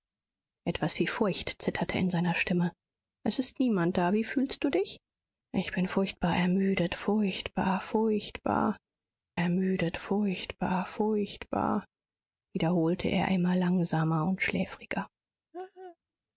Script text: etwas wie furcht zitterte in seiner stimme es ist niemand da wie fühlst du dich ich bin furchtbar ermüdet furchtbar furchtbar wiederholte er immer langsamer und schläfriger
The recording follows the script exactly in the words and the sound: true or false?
false